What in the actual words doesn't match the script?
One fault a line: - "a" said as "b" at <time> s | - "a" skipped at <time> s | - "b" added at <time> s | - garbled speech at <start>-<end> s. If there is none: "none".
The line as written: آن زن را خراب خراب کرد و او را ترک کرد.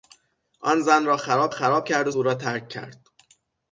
none